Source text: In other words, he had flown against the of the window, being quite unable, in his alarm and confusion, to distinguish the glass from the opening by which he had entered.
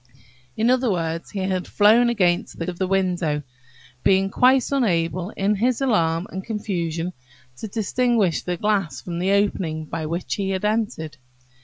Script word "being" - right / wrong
right